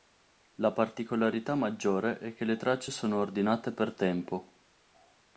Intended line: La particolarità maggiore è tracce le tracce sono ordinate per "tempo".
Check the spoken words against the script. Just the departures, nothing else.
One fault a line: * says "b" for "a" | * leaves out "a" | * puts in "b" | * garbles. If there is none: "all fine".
* says "che" for "tracce"